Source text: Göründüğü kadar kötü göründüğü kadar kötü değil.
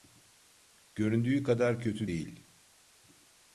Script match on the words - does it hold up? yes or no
no